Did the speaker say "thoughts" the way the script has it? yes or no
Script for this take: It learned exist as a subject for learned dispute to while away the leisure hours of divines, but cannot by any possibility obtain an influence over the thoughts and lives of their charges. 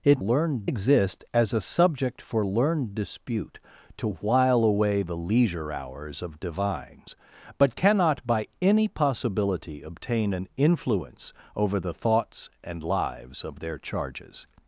yes